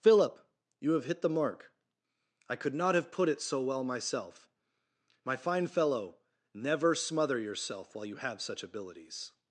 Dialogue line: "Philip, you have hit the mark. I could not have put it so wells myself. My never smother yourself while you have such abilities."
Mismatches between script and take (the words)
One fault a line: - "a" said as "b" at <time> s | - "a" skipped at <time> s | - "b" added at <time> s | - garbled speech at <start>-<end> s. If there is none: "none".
- "wells" said as "well" at 3.6 s
- "fine fellow" added at 5.3 s